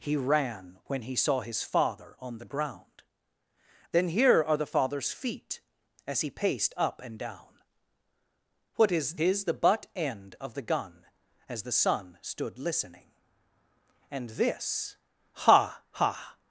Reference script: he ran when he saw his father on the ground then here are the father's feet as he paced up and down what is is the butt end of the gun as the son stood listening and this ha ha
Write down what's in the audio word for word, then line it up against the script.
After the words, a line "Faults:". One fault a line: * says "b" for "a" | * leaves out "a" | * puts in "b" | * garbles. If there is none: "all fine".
he ran when he saw his father on the ground then here are the father's feet as he paced up and down what is is the butt end of the gun as the son stood listening and this ha ha
Faults:
all fine